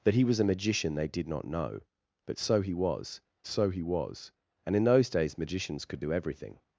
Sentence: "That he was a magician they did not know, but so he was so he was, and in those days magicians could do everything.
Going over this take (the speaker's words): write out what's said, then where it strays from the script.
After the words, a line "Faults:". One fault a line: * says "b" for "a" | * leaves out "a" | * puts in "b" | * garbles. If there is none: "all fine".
"That he was a magician they did not know, but so he was so he was, and in those days magicians could do everything.
Faults:
all fine